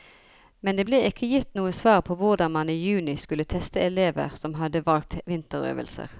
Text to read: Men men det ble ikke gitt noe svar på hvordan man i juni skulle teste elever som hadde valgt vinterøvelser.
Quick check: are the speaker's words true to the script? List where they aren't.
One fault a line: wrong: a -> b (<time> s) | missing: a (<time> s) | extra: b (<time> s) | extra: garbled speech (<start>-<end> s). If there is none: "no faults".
missing: men (0.8 s)